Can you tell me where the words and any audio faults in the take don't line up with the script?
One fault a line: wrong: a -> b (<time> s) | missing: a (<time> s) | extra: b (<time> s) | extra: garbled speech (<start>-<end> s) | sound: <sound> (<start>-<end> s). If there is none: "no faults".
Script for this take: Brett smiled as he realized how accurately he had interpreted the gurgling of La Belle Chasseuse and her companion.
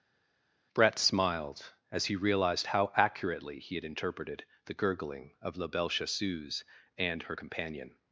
no faults